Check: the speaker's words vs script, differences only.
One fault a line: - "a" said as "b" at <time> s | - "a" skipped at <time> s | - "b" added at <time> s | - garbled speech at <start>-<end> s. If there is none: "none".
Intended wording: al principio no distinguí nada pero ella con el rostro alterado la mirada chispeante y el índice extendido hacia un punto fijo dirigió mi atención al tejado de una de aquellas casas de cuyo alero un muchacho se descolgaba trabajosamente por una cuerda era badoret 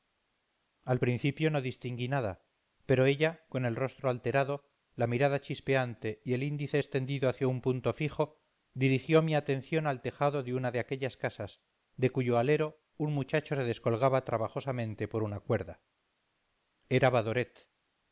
none